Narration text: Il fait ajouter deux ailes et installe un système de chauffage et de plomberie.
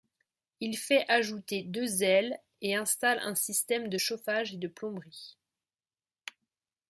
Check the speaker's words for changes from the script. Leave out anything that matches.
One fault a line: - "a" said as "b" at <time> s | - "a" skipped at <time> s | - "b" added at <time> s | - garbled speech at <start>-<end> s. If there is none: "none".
none